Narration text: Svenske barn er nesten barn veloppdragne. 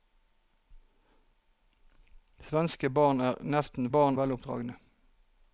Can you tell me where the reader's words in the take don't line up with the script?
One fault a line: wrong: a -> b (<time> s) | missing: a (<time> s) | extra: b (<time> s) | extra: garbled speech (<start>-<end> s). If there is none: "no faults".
no faults